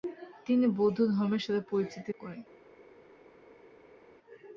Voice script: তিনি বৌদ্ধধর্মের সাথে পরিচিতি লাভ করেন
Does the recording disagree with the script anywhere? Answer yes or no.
yes